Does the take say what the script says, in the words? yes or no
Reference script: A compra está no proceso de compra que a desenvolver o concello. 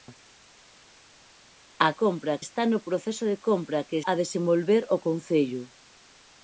yes